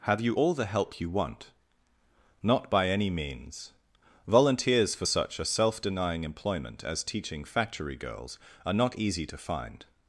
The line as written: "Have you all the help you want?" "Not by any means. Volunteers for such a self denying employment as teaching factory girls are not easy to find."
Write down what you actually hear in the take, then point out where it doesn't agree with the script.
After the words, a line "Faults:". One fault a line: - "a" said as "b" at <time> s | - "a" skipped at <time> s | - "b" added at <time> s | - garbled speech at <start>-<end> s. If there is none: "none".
"Have you all the help you want?" "Not by any means. Volunteers for such a self denying employment as teaching factory girls are not easy to find."
Faults:
none